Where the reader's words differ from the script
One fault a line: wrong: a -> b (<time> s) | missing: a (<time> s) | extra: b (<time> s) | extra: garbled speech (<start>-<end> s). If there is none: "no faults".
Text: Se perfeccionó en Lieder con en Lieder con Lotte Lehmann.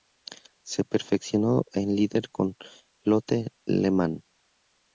missing: en Lieder con (2.5 s)